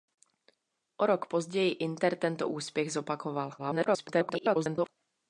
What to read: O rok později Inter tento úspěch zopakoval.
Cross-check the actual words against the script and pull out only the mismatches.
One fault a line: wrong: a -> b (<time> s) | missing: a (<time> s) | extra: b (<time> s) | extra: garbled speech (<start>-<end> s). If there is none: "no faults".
extra: garbled speech (3.6-4.9 s)